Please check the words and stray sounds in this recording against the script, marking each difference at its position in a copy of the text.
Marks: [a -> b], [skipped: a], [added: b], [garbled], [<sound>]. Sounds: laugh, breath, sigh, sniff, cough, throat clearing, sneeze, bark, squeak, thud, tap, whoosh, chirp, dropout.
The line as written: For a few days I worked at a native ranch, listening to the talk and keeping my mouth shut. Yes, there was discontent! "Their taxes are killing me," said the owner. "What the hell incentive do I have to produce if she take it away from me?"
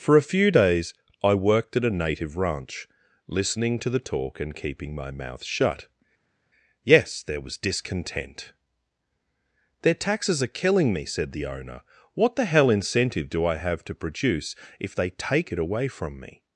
For a few days I worked at a native ranch, listening to the talk and keeping my mouth shut. Yes, there was discontent! "Their taxes are killing me," said the owner. "What the hell incentive do I have to produce if [she -> they] take it away from me?"